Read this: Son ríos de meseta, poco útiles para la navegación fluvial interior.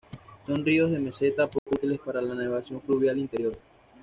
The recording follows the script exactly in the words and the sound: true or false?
false